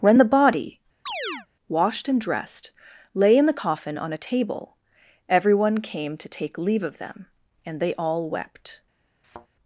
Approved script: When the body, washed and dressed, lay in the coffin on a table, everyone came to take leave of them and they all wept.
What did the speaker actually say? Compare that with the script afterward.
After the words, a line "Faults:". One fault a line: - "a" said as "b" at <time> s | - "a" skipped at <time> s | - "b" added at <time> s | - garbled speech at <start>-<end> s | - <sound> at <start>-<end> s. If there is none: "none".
When the body, washed and dressed, lay in the coffin on a table, everyone came to take leave of them and they all wept.
Faults:
- chirp at 1.1-1.5 s
- thud at 9.2-9.5 s